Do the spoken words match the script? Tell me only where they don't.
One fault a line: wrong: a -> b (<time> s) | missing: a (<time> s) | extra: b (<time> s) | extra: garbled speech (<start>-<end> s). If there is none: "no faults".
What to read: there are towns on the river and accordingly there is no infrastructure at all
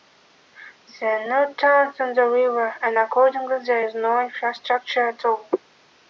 extra: no (1.3 s)